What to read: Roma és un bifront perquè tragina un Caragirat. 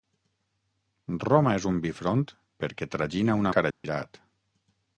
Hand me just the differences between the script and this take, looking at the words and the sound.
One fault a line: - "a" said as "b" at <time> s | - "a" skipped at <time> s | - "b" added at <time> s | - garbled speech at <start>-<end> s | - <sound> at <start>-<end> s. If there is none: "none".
- dropout at 3.7-3.8 s